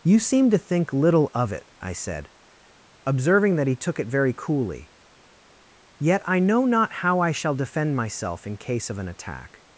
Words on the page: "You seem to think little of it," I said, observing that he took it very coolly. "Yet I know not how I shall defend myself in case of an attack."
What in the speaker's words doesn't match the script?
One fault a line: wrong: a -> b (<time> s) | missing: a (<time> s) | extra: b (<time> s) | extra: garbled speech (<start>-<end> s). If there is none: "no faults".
no faults